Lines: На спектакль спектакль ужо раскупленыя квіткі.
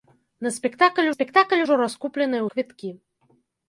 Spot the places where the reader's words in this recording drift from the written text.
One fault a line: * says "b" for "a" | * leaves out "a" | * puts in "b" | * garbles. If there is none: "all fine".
all fine